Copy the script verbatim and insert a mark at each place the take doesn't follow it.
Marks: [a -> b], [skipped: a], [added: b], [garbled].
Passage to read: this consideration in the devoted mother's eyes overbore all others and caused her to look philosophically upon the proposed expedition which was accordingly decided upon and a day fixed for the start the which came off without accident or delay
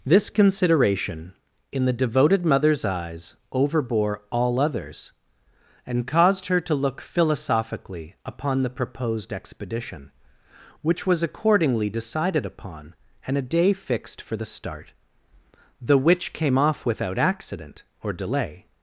this consideration in the devoted mother's eyes overbore all others and caused her to look philosophically upon the proposed expedition which was accordingly decided upon and a day fixed for the start the which came off without accident or delay